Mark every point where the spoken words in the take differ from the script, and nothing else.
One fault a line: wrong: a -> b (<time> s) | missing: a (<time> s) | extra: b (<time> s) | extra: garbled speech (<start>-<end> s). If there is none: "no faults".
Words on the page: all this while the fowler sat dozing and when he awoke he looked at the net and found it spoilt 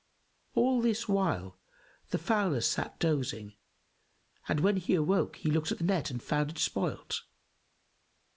no faults